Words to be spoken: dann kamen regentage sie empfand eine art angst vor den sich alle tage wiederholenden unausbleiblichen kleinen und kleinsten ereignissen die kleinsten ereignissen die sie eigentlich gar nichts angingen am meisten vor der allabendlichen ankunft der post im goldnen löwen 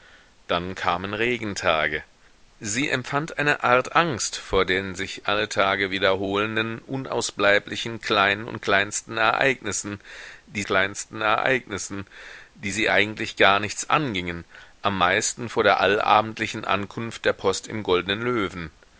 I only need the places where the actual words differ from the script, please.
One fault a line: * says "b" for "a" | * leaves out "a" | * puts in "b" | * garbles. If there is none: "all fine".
all fine